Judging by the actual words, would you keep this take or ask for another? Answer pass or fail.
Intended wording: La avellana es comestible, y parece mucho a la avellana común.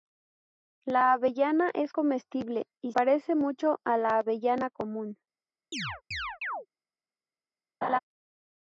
pass